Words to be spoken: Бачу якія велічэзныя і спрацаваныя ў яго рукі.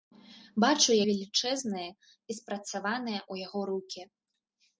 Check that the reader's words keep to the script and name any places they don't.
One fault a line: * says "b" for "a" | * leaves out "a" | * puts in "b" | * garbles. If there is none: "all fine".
* leaves out "якія"